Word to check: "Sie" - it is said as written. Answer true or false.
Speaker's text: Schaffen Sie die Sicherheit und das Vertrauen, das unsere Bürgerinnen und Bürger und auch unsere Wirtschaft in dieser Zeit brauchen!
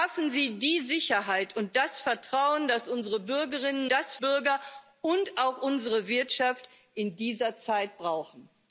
true